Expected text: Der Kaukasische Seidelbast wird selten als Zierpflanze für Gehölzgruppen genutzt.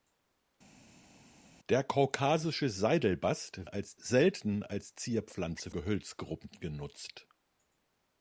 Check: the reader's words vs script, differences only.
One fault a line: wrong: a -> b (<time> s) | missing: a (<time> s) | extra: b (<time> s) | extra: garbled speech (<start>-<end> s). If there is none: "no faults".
wrong: wird -> als (3.7 s)
missing: für (5.7 s)